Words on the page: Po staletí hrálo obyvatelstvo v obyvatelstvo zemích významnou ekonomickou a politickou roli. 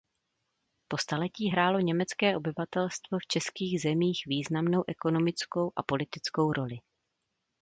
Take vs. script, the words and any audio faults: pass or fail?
fail